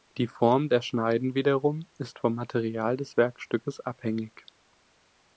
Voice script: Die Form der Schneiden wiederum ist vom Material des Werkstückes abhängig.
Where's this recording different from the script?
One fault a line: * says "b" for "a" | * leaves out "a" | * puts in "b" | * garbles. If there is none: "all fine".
all fine